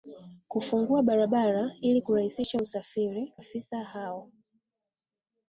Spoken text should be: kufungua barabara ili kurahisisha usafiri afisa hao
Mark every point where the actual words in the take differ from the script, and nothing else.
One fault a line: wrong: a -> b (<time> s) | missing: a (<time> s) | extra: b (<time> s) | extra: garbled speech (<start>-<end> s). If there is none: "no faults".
no faults